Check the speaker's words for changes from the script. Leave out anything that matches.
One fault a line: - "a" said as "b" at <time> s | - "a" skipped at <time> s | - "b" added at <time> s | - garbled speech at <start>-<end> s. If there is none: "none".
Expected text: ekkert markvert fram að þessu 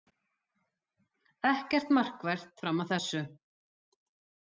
none